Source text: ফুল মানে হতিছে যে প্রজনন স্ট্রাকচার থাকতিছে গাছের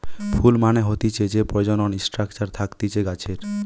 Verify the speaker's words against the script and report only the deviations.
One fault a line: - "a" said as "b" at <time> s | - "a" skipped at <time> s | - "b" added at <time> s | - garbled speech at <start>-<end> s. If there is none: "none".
none